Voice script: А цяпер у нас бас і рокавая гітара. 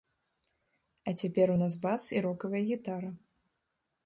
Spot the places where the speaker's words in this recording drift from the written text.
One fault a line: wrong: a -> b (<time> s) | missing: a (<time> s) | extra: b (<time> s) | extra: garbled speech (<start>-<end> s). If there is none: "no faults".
no faults